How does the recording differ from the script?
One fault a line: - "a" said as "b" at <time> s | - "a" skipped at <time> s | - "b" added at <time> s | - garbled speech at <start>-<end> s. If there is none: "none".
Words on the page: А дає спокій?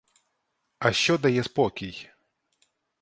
- "що" added at 0.9 s